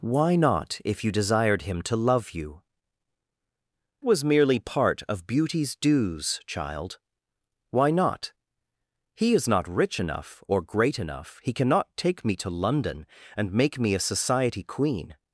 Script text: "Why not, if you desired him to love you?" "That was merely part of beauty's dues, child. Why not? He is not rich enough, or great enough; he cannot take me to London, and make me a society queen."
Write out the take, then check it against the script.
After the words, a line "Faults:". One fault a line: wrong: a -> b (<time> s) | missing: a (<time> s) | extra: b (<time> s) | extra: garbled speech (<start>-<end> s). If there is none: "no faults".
"Why not, if you desired him to love you?" "Was merely part of beauty's dues, child. Why not? He is not rich enough, or great enough; he cannot take me to London, and make me a society queen."
Faults:
missing: That (2.6 s)